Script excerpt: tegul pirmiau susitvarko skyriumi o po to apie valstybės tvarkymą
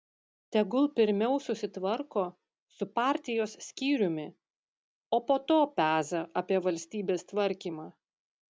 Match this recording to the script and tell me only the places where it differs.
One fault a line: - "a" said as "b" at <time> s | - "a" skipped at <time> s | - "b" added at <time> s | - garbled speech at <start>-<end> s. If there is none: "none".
- "su partijos" added at 2.8 s
- "peza" added at 5.8 s